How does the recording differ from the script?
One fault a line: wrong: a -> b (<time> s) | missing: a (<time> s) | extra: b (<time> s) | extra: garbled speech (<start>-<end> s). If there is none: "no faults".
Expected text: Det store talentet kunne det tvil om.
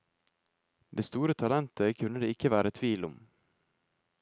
extra: ikke være (2.3 s)